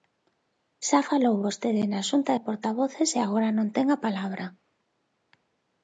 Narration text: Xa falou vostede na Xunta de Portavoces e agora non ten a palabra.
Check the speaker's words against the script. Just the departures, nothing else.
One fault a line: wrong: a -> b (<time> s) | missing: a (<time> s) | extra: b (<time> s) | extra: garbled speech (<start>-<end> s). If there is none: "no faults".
no faults